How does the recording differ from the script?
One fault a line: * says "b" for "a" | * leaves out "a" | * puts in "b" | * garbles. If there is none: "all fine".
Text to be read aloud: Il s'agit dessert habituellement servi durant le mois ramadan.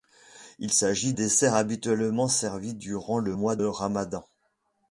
all fine